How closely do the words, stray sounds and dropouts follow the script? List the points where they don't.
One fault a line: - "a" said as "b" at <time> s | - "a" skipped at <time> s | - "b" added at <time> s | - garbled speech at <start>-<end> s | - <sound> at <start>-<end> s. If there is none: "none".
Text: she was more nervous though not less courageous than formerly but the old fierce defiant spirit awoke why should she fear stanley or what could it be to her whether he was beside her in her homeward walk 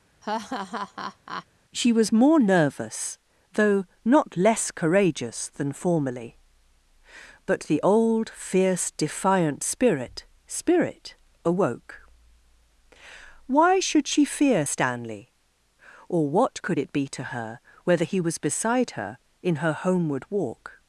- laugh at 0.2-1.5 s
- "spirit" added at 10.5 s